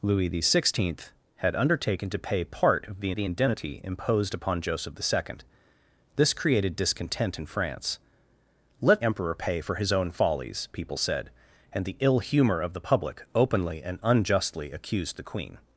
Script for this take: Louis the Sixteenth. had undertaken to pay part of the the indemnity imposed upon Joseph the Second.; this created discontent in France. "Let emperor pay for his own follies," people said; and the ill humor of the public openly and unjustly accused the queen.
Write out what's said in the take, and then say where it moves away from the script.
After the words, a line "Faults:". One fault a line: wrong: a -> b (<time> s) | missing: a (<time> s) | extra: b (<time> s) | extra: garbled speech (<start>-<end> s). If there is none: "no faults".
Louis the Sixteenth. had undertaken to pay part of the the indemnity imposed upon Joseph the Second.; this created discontent in France. "Let emperor pay for his own follies," people said; and the ill humor of the public openly and unjustly accused the queen.
Faults:
no faults